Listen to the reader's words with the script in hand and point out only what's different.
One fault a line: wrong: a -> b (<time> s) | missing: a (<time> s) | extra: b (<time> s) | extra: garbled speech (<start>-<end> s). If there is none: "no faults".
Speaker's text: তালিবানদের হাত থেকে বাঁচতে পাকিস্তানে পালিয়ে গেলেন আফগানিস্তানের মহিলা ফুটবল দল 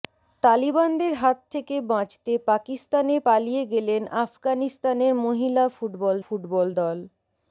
extra: ফুটবল (6.2 s)